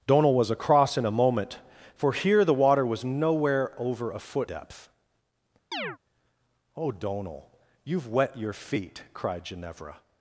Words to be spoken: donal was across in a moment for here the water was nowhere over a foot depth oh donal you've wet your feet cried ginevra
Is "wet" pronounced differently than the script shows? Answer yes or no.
no